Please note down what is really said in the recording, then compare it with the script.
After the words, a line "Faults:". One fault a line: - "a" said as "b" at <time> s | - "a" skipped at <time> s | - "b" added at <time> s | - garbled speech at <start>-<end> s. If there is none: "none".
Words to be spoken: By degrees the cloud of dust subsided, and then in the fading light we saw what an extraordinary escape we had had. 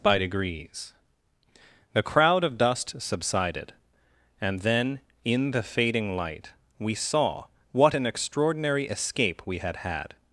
By degrees the crowd of dust subsided, and then in the fading light we saw what an extraordinary escape we had had.
Faults:
- "cloud" said as "crowd" at 2.0 s